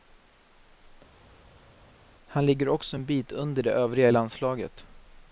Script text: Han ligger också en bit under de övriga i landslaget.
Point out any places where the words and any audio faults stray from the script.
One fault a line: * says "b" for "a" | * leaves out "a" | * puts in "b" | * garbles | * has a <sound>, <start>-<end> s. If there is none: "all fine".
all fine